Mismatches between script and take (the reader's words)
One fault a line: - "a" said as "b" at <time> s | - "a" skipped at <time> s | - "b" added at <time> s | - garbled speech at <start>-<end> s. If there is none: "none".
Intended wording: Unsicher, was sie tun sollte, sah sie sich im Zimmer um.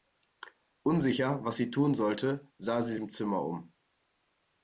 - "sich" skipped at 3.0 s